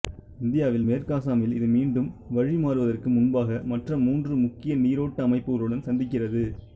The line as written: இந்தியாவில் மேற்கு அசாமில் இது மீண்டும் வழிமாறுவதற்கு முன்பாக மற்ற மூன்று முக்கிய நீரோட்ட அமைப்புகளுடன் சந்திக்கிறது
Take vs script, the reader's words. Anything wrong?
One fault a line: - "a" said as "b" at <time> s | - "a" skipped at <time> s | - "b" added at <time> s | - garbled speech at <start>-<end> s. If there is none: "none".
none